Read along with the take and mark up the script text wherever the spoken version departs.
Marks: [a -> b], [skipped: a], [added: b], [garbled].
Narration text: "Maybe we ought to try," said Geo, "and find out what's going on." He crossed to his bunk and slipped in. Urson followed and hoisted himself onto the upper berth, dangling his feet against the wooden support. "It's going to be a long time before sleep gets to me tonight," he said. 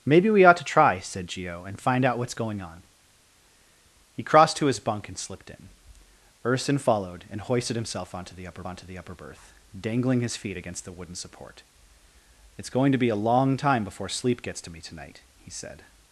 "Maybe we ought to try," said Geo, "and find out what's going on." He crossed to his bunk and slipped in. Urson followed and hoisted himself onto the upper [added: onto the upper] berth, dangling his feet against the wooden support. "It's going to be a long time before sleep gets to me tonight," he said.